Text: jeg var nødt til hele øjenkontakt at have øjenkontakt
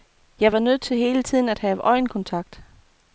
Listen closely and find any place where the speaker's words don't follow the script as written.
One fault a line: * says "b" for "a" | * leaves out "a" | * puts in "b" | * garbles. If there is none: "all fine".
* says "tiden" for "øjenkontakt"